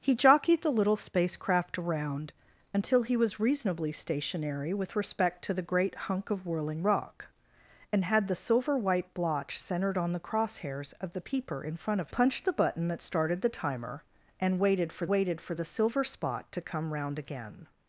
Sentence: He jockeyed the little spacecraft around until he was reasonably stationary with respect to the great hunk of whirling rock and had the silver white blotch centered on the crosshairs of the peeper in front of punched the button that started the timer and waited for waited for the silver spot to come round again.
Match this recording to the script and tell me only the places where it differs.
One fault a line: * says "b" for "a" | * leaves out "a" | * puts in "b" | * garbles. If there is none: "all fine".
all fine